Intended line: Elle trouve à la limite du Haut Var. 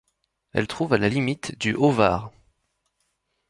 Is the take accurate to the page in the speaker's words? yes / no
yes